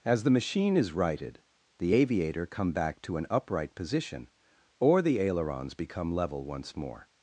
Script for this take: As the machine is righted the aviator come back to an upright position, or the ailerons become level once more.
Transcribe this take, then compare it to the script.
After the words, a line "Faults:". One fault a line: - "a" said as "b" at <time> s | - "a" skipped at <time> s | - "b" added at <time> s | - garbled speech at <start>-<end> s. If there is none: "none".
As the machine is righted the aviator come back to an upright position, or the ailerons become level once more.
Faults:
none